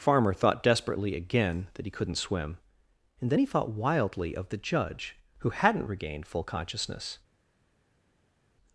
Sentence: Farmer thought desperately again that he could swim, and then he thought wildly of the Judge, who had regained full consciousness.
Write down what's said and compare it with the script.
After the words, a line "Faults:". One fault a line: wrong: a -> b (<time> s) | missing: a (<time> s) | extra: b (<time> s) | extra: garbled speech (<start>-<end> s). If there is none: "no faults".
Farmer thought desperately again that he couldn't swim, and then he thought wildly of the Judge, who hadn't regained full consciousness.
Faults:
wrong: could -> couldn't (1.9 s)
wrong: had -> hadn't (5.5 s)